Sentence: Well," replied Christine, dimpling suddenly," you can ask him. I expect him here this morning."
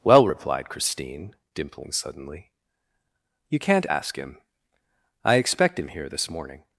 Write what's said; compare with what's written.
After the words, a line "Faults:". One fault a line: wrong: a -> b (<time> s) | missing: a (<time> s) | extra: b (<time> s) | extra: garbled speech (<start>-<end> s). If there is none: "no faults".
Well," replied Christine, dimpling suddenly," you can't ask him. I expect him here this morning."
Faults:
wrong: can -> can't (3.6 s)